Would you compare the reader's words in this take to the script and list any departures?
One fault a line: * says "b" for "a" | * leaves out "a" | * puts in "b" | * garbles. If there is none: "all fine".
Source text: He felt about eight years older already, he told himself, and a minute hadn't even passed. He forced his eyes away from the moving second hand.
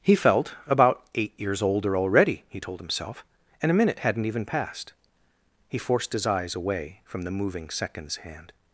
* says "seconds" for "second"